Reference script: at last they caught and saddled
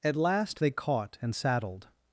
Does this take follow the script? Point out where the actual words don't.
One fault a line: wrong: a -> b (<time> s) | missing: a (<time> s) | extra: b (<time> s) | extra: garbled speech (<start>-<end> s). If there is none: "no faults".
no faults